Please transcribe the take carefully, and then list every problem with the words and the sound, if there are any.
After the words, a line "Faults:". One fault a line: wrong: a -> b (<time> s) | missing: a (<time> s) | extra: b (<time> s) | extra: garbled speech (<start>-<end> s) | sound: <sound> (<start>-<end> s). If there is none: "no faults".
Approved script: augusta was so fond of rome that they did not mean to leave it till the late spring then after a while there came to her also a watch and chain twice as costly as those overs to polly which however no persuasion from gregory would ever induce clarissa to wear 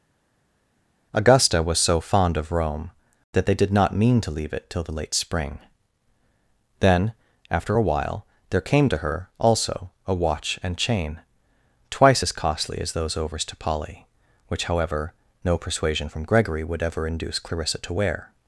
augusta was so fond of rome that they did not mean to leave it till the late spring then after a while there came to her also a watch and chain twice as costly as those overs to polly which however no persuasion from gregory would ever induce clarissa to wear
Faults:
no faults